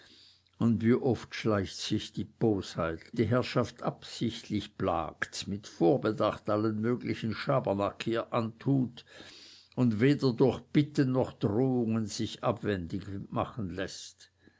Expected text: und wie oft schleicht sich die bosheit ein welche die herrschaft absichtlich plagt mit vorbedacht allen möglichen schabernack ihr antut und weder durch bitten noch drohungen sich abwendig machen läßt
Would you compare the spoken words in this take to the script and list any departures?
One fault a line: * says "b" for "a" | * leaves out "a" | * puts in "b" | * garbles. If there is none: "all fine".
* leaves out "ein welche"